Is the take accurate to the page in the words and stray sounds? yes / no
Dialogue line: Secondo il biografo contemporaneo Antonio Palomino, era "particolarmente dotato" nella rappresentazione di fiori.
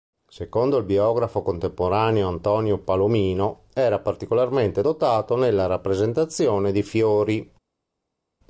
yes